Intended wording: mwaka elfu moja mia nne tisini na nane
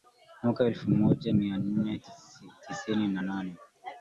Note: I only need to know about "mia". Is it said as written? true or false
true